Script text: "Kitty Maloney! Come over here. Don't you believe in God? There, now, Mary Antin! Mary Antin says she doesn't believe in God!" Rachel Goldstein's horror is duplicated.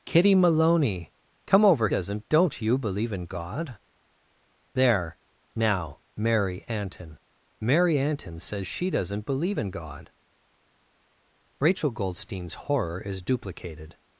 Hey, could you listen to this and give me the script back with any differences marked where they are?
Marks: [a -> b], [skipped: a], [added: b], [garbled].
"Kitty Maloney! Come over [here. -> doesn't] Don't you believe in God? There, now, Mary Antin! Mary Antin says she doesn't believe in God!" Rachel Goldstein's horror is duplicated.